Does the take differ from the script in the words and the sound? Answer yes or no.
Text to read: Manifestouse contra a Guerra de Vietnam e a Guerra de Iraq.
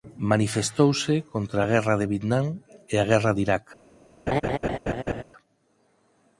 yes